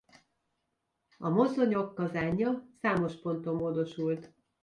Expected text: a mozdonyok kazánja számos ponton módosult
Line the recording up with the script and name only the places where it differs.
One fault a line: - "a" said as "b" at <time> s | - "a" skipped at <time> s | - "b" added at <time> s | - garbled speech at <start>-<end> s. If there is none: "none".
none